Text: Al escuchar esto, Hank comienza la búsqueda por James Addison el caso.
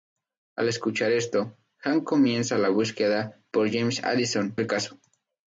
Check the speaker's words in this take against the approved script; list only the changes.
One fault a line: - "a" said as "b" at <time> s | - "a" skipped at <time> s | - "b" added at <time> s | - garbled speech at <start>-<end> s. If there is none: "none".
none